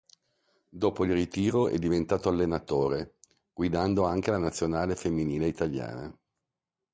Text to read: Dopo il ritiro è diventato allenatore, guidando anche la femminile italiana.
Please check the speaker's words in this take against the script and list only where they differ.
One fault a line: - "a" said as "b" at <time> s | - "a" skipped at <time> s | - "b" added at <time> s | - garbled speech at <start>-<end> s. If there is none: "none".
- "nazionale" added at 4.4 s